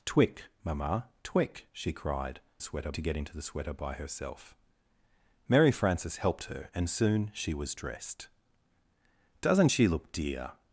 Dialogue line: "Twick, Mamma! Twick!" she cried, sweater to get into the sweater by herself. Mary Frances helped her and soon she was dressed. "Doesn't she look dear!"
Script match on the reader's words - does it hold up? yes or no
yes